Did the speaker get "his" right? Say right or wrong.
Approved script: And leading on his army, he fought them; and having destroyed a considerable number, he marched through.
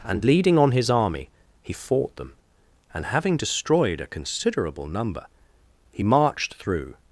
right